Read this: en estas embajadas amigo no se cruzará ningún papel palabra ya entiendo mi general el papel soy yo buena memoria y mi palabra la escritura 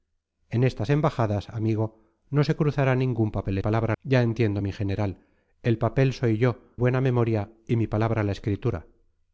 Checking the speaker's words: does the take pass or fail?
pass